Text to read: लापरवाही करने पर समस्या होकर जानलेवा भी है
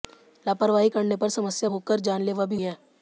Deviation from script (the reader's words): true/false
false